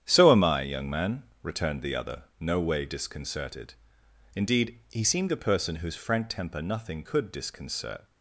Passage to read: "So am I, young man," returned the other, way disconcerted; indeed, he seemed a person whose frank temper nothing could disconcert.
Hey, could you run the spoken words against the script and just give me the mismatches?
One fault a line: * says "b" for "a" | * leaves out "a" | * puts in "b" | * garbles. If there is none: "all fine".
* puts in "no"